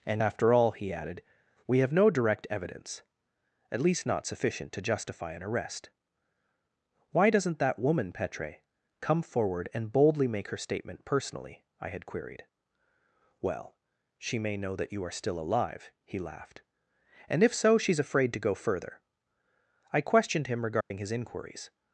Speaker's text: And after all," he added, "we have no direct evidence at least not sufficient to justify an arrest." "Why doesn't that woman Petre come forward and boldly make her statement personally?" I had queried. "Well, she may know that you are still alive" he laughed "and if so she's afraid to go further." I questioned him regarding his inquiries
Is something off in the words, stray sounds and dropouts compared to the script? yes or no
yes